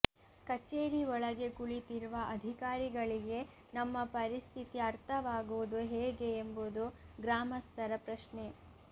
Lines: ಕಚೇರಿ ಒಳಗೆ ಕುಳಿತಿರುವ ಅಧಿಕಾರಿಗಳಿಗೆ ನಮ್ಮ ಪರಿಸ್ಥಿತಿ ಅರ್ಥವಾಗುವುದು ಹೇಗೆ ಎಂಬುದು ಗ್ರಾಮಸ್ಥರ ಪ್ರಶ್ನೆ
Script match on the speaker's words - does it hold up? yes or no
yes